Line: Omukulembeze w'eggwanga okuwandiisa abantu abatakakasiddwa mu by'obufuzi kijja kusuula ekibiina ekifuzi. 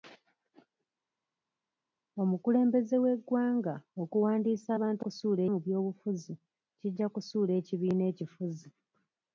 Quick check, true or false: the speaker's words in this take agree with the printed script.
false